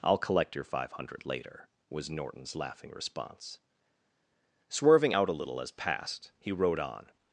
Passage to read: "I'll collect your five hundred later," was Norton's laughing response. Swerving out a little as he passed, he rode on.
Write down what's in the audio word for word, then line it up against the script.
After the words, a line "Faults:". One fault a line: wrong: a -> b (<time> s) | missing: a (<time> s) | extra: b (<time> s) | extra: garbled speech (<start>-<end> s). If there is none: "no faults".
"I'll collect your five hundred later," was Norton's laughing response. Swerving out a little as passed, he rode on.
Faults:
missing: he (5.7 s)